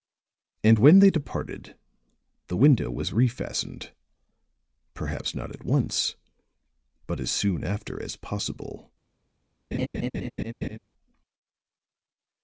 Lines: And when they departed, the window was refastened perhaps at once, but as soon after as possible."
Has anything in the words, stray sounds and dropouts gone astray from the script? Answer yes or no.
yes